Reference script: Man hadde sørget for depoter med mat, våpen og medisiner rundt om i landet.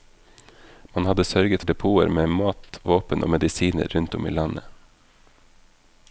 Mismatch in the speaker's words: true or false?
true